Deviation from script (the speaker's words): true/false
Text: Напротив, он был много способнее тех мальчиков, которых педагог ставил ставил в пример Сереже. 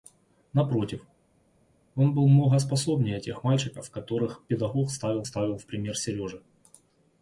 false